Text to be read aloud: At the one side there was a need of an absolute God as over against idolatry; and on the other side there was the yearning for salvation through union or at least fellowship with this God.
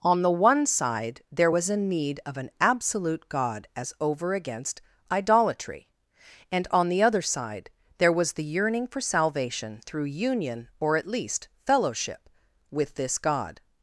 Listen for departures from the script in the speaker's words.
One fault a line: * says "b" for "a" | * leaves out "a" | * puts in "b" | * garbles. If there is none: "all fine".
* says "On" for "At"